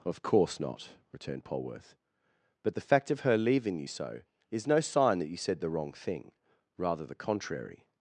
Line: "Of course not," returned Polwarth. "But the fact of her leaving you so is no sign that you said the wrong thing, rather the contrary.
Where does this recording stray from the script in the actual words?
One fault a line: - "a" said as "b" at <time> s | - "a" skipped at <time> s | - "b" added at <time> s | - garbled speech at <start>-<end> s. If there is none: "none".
none